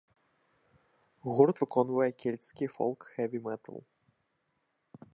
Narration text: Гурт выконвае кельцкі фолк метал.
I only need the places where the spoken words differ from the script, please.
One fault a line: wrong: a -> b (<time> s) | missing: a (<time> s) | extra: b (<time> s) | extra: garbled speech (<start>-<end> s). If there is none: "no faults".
extra: хэві (3.1 s)